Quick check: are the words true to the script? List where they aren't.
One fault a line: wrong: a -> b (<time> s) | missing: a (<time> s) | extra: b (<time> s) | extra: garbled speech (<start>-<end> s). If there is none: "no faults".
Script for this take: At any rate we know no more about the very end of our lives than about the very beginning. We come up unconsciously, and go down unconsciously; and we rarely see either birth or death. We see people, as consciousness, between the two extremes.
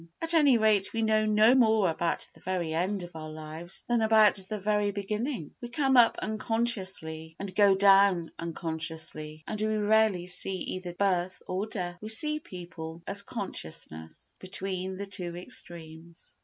no faults